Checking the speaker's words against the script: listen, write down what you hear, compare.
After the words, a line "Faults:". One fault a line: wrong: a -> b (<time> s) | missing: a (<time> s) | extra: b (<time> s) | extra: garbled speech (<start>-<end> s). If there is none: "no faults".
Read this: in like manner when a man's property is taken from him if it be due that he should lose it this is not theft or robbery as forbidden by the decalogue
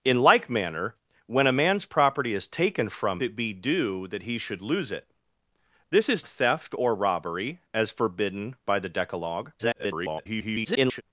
in like manner when a man's property is taken from it be due that he should lose it this is theft or robbery as forbidden by the decalogue [garbled]
Faults:
missing: him if (3.2 s)
missing: not (6.2 s)
extra: garbled speech (9.6-11.0 s)